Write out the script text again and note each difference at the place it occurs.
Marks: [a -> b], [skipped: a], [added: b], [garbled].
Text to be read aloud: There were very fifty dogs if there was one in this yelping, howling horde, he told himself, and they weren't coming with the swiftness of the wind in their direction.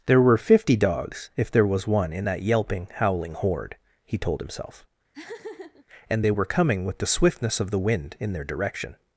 There were [skipped: very] fifty dogs if there was one in [this -> that] yelping, howling horde, he told himself, and they [weren't -> were] coming with the swiftness of the wind in their direction.